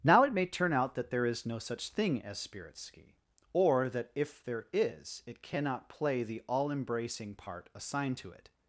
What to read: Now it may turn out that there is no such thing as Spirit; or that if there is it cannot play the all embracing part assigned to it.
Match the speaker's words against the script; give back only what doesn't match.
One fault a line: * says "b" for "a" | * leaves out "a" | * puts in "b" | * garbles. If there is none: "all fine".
* puts in "ski"